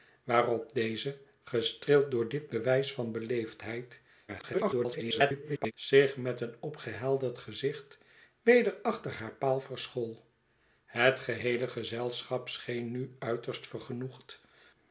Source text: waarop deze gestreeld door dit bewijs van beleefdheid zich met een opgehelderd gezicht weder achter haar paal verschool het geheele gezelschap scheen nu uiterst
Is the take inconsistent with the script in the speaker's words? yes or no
yes